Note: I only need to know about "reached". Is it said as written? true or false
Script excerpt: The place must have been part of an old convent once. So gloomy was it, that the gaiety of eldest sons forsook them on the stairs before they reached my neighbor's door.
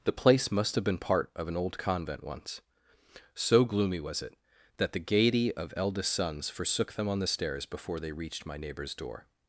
true